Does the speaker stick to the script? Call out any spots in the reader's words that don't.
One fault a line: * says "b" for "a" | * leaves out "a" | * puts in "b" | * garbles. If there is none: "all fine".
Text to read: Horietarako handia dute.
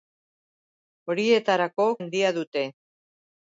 all fine